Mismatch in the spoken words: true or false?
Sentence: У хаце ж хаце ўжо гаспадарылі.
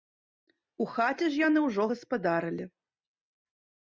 true